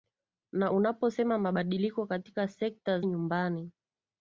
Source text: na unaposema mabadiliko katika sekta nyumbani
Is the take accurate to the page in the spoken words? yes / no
yes